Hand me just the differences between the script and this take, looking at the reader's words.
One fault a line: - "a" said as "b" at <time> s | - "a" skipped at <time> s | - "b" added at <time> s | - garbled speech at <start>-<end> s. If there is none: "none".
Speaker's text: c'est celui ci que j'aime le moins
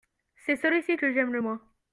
none